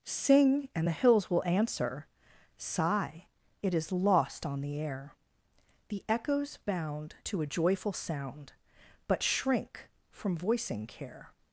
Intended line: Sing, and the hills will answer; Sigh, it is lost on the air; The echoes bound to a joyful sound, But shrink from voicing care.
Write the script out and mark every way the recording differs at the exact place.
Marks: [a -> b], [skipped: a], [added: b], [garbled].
Sing, and the hills will answer; Sigh, it is lost on the air; The echoes bound to a joyful sound, But shrink from voicing care.